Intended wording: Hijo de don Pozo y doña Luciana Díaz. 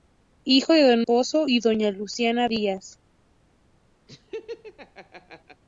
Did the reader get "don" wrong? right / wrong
right